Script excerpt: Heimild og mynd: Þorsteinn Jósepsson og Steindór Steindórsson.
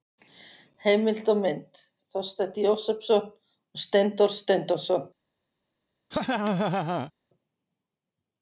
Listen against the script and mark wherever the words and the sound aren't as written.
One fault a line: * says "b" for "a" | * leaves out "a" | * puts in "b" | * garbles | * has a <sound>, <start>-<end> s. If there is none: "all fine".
* has a laugh, 6.1-7.1 s